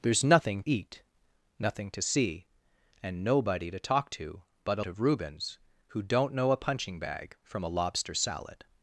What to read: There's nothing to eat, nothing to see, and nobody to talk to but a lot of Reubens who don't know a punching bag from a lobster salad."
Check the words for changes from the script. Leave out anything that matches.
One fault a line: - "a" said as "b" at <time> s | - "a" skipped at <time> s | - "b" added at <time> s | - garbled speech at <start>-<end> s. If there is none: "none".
- "to" skipped at 0.6 s
- "lot" skipped at 4.8 s